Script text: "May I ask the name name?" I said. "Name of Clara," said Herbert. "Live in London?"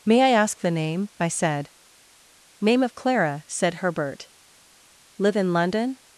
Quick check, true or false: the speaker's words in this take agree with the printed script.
false